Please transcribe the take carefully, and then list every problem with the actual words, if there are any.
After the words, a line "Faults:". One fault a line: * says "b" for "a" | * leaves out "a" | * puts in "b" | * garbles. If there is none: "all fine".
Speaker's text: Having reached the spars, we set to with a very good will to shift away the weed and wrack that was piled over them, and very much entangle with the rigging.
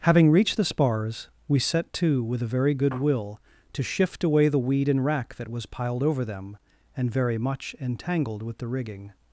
Having reached the spars, we set to with a very good will to shift away the weed and wrack that was piled over them, and very much entangled with the rigging.
Faults:
* says "entangled" for "entangle"